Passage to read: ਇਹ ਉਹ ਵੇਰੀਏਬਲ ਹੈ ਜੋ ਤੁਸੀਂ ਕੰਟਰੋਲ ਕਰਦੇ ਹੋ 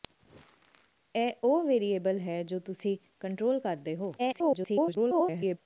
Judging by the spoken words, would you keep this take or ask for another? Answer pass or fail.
fail